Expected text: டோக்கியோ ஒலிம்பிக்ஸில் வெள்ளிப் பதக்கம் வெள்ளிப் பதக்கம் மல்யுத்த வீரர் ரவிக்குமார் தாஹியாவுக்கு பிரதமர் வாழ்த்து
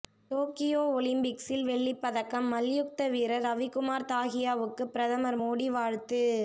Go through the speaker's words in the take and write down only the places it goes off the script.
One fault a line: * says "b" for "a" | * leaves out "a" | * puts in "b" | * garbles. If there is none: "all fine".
* leaves out "வெள்ளிப் பதக்கம்"
* puts in "மோடி"